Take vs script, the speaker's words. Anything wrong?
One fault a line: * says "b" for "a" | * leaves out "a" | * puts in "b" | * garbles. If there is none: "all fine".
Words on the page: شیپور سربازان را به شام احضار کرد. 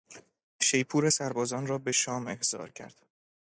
all fine